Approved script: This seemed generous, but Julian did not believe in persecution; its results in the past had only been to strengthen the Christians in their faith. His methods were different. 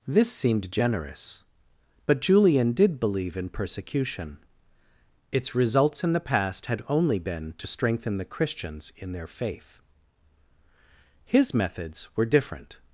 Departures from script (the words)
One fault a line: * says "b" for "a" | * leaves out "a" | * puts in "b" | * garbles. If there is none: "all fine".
* leaves out "not"